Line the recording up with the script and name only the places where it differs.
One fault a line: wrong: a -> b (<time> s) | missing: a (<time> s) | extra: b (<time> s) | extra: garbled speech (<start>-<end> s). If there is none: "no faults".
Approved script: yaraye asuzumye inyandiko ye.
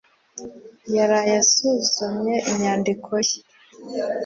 no faults